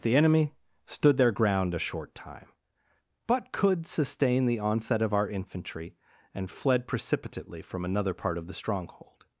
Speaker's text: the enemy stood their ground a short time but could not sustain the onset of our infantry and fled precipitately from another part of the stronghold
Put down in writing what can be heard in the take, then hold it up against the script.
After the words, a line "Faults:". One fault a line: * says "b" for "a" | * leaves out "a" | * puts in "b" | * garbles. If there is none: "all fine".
the enemy stood their ground a short time but could sustain the onset of our infantry and fled precipitately from another part of the stronghold
Faults:
* leaves out "not"